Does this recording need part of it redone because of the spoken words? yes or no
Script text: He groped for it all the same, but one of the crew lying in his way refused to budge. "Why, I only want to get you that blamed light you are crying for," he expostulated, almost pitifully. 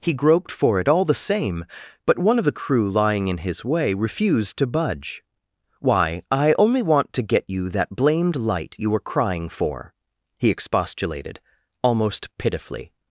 yes